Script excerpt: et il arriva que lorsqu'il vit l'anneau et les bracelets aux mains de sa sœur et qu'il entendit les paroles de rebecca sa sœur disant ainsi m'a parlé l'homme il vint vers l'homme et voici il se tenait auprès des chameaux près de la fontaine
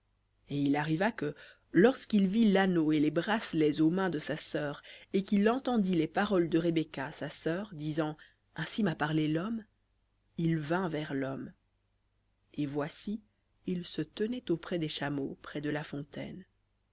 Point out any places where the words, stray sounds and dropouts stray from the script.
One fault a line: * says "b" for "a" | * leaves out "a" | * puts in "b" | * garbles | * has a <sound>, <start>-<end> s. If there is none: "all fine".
all fine